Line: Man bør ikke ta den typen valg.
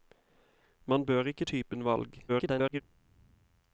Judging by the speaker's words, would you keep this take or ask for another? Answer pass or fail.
fail